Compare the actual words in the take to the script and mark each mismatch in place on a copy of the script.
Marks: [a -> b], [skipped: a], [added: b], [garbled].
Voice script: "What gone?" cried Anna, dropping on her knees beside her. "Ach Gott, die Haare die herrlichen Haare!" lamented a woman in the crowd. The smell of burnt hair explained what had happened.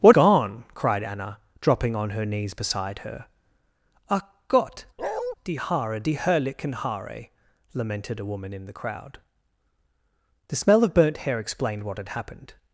"What gone?" cried Anna, dropping on her knees beside her. "Ach Gott, die Haare die herrlichen Haare!" lamented a woman in the crowd. The smell of burnt hair explained what had happened.